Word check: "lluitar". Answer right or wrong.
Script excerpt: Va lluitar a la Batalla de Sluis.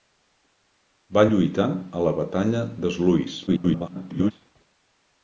right